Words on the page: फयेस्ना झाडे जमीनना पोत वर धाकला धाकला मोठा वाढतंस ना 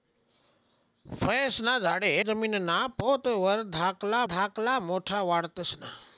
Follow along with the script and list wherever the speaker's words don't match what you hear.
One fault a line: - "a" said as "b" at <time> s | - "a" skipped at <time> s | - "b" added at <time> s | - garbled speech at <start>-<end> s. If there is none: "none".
none